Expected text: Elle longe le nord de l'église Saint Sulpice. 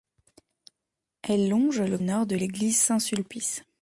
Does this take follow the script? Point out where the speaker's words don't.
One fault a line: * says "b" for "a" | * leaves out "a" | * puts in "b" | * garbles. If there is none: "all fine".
all fine